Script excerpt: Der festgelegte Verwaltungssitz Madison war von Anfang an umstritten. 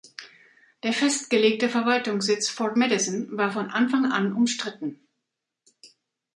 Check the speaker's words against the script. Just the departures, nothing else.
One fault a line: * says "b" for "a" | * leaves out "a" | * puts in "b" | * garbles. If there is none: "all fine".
* puts in "Fort"